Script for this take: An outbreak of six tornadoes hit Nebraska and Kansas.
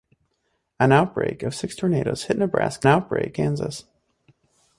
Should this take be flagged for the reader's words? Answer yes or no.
yes